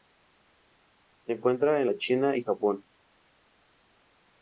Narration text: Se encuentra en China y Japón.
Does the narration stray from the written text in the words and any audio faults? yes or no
yes